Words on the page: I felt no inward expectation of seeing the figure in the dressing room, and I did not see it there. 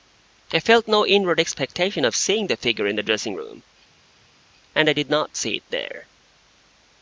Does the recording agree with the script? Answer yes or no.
yes